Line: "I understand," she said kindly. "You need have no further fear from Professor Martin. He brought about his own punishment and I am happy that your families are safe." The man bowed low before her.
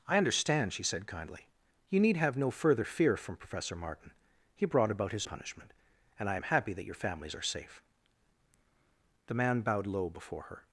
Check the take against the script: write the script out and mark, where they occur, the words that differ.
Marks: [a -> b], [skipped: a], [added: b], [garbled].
"I understand," she said kindly. "You need have no further fear from Professor Martin. He brought about his [skipped: own] punishment and I am happy that your families are safe." The man bowed low before her.